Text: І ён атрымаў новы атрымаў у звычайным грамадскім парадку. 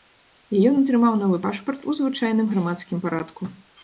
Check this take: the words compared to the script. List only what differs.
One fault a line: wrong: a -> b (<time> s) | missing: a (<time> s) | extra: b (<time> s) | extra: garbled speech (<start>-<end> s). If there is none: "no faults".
wrong: атрымаў -> пашпарт (1.4 s)